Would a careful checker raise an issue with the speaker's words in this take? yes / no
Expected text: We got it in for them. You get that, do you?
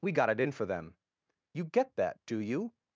no